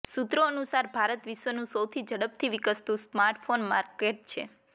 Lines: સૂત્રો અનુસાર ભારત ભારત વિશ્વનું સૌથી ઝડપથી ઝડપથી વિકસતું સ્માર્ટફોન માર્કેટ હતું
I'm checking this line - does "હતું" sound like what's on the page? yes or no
no